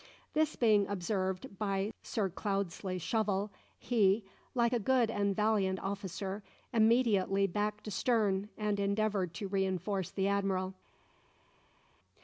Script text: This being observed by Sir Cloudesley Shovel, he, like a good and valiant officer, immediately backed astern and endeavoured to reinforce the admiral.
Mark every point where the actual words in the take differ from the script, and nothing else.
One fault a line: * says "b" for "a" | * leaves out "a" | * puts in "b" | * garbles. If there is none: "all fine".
all fine